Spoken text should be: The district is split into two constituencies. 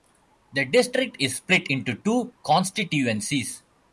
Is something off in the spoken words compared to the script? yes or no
no